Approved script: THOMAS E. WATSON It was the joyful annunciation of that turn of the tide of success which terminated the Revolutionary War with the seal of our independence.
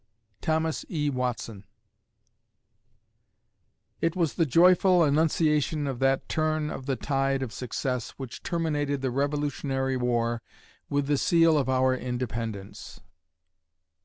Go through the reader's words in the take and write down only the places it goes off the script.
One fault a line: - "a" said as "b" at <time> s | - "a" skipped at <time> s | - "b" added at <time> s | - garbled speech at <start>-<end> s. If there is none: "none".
none